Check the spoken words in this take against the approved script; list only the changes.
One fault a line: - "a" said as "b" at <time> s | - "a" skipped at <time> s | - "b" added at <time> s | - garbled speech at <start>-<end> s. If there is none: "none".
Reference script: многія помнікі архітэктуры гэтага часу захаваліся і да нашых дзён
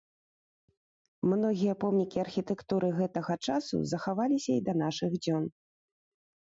none